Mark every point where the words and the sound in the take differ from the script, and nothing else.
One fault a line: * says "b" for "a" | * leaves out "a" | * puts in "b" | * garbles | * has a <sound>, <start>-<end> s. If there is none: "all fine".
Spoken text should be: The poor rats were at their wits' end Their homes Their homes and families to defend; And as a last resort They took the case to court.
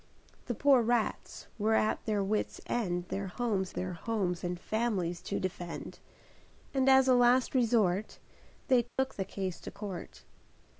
* has a dropout, 8.9-9.0 s